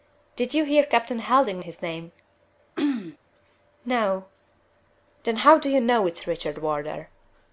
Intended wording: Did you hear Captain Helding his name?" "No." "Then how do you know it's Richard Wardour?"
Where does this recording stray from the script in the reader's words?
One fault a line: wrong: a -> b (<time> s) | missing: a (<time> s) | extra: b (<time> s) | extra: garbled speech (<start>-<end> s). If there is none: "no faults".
no faults